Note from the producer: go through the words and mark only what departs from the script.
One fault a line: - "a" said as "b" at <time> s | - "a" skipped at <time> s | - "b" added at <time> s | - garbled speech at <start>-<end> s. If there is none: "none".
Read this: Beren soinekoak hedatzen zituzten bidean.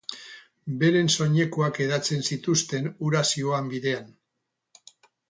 - "hura zihoan" added at 3.0 s